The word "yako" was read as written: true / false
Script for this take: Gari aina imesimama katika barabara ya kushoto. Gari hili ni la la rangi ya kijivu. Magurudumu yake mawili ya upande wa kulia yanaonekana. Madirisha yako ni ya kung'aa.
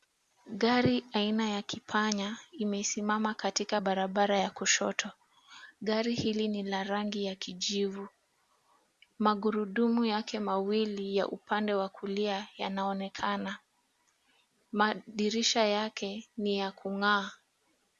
false